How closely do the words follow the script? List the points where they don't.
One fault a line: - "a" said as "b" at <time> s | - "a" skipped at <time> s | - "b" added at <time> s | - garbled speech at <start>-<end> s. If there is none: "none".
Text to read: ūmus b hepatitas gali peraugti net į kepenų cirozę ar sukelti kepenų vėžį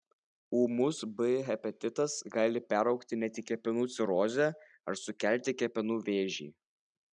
none